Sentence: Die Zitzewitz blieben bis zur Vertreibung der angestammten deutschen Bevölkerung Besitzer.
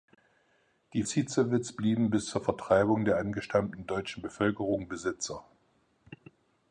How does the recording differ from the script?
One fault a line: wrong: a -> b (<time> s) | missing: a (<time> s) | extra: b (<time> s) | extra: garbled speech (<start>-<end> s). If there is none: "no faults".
no faults